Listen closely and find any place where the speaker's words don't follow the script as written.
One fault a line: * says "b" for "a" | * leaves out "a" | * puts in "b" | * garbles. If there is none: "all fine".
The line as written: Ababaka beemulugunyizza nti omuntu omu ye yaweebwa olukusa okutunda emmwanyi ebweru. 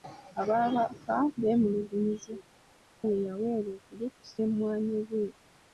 * leaves out "nti omuntu omu"
* leaves out "okutunda"